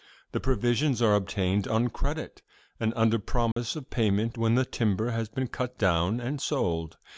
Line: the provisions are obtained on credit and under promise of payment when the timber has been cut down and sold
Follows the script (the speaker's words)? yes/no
yes